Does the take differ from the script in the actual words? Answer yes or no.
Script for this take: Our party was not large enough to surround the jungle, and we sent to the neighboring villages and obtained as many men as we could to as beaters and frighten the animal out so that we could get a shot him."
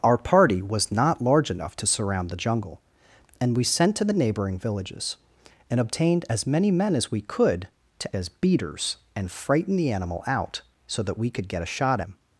no